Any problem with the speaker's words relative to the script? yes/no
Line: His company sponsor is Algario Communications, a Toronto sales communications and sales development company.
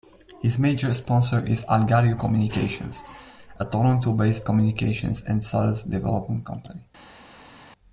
yes